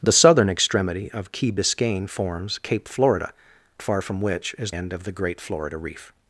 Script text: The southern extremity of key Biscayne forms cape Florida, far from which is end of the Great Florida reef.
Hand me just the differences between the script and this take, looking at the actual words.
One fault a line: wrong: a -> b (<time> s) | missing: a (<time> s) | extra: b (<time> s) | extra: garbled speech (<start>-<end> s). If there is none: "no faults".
no faults